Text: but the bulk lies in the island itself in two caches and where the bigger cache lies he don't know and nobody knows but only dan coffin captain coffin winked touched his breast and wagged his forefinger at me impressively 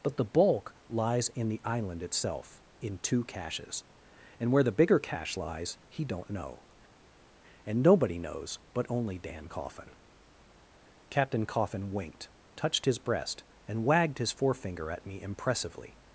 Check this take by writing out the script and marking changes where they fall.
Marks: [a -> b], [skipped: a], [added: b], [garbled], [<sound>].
but the bulk lies in the island itself in two caches and where the bigger cache lies he don't know and nobody knows but only dan coffin captain coffin winked touched his breast and wagged his forefinger at me impressively